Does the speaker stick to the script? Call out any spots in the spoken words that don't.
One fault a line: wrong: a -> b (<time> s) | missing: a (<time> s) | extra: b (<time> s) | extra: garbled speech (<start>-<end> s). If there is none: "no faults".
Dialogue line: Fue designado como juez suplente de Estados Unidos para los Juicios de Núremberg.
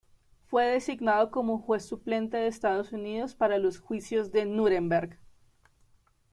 no faults